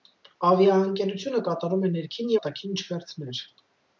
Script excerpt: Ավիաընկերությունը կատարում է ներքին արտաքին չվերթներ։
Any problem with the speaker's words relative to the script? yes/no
no